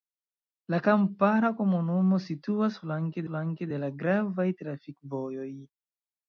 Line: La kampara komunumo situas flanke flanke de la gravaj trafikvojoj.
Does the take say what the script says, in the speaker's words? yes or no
yes